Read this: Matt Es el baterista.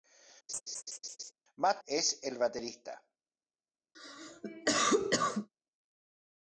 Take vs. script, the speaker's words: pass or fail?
pass